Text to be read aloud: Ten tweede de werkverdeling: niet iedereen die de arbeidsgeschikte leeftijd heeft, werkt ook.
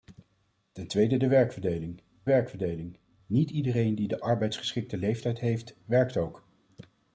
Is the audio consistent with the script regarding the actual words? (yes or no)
no